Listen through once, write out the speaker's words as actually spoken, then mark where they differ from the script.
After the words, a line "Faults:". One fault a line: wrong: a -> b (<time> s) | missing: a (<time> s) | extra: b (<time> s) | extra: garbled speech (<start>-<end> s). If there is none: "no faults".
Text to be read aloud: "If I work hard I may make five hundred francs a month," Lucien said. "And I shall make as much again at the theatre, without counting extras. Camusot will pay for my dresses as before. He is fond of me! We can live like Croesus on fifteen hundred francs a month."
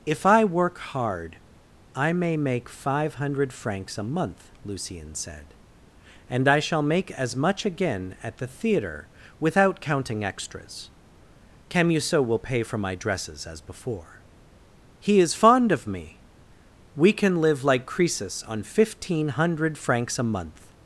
"If I work hard I may make five hundred francs a month," Lucien said. "And I shall make as much again at the theatre, without counting extras. Camusot will pay for my dresses as before. He is fond of me! We can live like Croesus on fifteen hundred francs a month."
Faults:
no faults